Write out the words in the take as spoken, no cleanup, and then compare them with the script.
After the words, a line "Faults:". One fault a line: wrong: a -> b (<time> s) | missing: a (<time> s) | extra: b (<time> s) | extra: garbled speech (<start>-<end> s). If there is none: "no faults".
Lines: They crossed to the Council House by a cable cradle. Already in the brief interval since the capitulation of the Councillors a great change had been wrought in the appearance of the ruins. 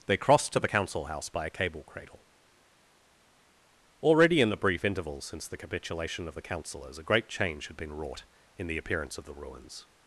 They crossed to the Council House by a cable cradle. Already in the brief interval since the capitulation of the Councillors a great change had been wrought in the appearance of the ruins.
Faults:
no faults